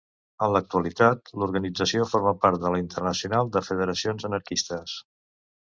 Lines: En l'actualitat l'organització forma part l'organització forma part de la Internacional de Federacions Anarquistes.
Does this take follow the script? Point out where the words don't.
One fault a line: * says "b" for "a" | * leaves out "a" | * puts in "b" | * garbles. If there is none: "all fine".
* leaves out "l'organització forma part"